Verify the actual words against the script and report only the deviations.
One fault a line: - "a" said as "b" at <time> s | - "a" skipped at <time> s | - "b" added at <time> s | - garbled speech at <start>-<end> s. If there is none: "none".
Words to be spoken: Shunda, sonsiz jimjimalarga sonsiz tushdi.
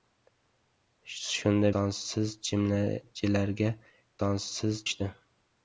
none